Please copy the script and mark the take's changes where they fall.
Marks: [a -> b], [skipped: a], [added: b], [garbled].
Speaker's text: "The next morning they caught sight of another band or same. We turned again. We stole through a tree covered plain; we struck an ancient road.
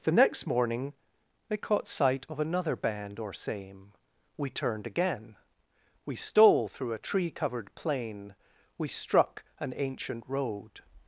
"The next morning they caught sight of another band or same. We turned again. We stole through a tree covered plain; we struck an ancient road.